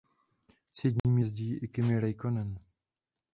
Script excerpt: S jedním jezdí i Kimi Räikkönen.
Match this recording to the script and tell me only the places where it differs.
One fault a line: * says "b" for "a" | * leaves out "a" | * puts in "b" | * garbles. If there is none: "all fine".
all fine